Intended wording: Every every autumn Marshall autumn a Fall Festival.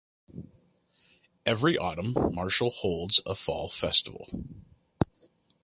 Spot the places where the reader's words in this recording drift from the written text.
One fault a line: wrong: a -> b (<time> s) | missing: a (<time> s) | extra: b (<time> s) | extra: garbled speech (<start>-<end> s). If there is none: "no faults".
missing: every (1.8 s)
wrong: autumn -> holds (2.7 s)